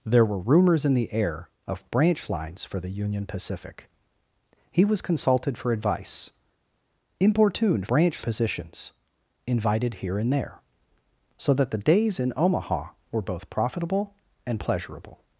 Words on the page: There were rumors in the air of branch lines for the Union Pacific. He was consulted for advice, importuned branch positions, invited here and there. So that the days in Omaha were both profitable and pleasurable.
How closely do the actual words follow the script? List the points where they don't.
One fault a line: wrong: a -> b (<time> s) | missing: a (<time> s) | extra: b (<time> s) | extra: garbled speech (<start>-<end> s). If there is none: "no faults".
no faults